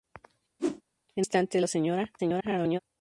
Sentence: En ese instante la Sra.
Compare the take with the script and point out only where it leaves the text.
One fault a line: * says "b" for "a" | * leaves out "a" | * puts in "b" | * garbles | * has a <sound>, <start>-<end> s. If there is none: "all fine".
* has a whoosh, 0.6-0.8 s
* leaves out "ese"
* garbles